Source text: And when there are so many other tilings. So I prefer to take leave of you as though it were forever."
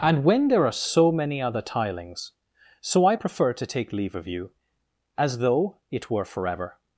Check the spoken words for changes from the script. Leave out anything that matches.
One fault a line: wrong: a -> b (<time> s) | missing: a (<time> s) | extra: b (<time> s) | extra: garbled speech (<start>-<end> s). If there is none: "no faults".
no faults